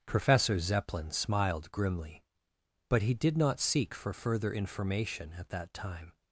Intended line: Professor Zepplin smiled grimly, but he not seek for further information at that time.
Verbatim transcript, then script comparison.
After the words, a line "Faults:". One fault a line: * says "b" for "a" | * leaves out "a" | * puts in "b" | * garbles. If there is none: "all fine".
Professor Zepplin smiled grimly, but he did not seek for further information at that time.
Faults:
* puts in "did"